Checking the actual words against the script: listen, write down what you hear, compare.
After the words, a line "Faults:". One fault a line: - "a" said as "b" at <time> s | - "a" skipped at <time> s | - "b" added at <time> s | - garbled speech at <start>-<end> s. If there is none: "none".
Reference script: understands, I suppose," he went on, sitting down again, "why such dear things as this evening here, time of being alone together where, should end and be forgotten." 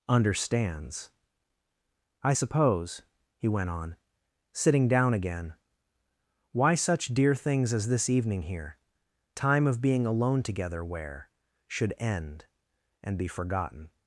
understands, I suppose," he went on, sitting down again, "why such dear things as this evening here, time of being alone together where, should end and be forgotten."
Faults:
none